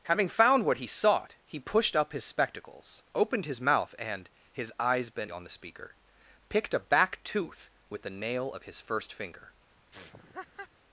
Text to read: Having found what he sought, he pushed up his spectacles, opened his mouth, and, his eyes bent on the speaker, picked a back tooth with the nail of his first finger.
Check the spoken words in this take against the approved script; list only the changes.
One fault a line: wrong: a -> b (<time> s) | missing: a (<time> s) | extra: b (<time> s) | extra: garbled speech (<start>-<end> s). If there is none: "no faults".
no faults